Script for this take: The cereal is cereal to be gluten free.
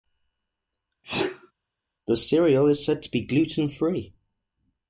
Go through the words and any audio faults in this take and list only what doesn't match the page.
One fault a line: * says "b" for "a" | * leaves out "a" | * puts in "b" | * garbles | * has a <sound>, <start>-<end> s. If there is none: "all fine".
* has a sneeze, 1.0-1.5 s
* says "said" for "cereal"